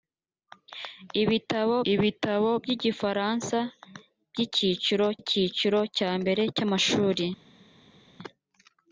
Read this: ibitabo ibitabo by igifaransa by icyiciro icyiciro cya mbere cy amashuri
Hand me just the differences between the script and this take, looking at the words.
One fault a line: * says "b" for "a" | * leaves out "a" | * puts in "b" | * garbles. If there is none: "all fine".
all fine